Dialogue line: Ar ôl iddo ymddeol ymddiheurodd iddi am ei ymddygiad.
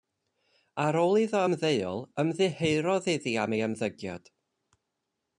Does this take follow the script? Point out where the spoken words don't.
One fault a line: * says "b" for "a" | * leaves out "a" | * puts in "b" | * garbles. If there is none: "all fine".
all fine